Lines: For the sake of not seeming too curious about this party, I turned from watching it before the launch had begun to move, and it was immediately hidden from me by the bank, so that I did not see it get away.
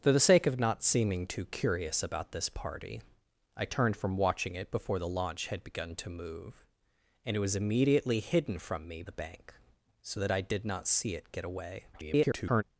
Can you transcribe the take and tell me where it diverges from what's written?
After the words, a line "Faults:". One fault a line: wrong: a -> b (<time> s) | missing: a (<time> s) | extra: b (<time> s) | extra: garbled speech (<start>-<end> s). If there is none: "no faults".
For the sake of not seeming too curious about this party, I turned from watching it before the launch had begun to move, and it was immediately hidden from me the bank, so that I did not see it get away. [garbled]
Faults:
missing: by (9.0 s)
extra: garbled speech (11.9-12.6 s)